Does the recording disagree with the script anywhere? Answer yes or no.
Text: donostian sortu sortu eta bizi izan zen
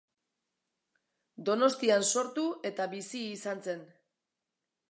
yes